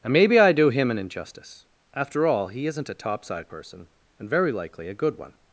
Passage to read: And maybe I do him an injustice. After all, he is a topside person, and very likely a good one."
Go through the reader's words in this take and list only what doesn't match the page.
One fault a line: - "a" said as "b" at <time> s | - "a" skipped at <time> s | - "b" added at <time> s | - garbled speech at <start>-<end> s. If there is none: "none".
- "is" said as "isn't" at 2.7 s